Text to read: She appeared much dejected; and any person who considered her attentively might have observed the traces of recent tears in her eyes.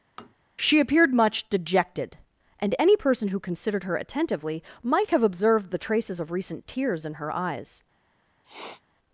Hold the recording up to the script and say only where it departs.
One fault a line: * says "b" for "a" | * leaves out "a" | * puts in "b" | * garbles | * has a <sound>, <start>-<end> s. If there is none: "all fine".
* has a tap, 0.2-0.3 s
* has a sniff, 8.4-8.8 s